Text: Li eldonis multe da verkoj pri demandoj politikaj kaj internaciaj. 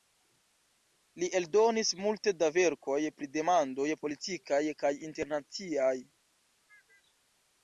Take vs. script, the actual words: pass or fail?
pass